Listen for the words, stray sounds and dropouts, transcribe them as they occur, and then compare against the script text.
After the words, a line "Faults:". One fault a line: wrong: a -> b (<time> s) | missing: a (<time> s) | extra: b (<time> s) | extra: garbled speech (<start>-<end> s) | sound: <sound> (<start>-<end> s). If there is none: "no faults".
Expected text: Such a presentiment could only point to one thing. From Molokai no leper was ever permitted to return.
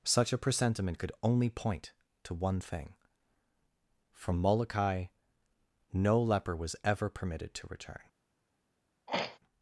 Such a presentiment could only point to one thing. From Molokai no leper was ever permitted to return.
Faults:
sound: throat clearing (9.1-9.4 s)